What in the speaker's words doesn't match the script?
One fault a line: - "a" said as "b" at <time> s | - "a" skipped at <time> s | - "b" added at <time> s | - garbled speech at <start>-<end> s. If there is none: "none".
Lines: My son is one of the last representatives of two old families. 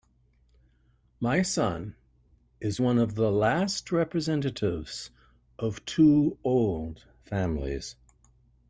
none